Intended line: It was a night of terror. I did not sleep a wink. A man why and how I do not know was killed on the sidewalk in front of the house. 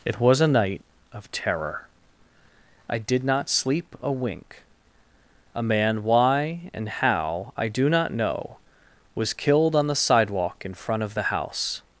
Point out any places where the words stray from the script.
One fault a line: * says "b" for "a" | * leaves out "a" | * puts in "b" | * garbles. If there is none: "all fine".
all fine